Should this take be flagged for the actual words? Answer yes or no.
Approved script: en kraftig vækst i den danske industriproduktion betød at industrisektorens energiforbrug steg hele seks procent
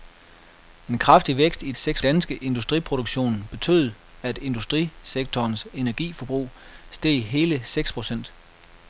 yes